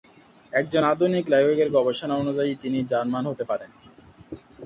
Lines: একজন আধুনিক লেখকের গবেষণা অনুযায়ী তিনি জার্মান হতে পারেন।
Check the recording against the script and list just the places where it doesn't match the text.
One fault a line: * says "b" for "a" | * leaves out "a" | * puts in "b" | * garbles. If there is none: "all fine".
all fine